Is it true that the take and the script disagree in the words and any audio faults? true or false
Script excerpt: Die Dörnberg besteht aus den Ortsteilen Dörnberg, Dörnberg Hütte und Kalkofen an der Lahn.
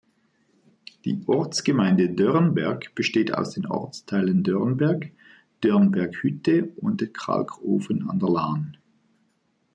true